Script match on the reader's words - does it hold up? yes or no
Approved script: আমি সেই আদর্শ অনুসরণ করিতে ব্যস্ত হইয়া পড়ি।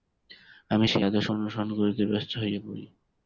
yes